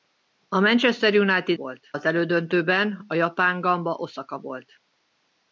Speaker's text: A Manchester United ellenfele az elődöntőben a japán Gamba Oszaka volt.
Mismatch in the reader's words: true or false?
true